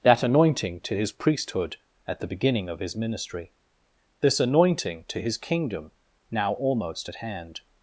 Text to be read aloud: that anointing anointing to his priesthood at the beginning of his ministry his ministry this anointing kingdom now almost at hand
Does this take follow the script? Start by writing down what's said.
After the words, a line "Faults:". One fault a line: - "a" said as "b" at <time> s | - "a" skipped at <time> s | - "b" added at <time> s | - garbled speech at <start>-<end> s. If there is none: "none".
that anointing to his priesthood at the beginning of his ministry this anointing to his kingdom now almost at hand
Faults:
- "anointing" skipped at 0.8 s
- "his ministry this anointing" said as "this anointing to his" at 4.2 s